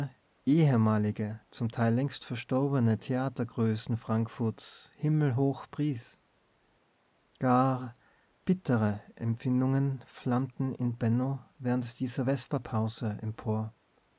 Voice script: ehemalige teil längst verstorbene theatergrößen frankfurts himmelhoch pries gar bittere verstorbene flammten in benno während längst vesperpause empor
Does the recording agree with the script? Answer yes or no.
no